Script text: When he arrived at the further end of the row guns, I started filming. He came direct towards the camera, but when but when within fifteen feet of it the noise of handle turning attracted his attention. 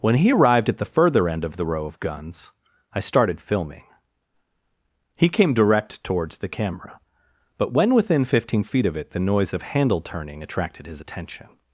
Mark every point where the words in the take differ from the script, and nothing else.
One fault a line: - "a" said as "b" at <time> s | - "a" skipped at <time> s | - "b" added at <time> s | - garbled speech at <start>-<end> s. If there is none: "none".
- "of" added at 1.9 s
- "but when" skipped at 7.9 s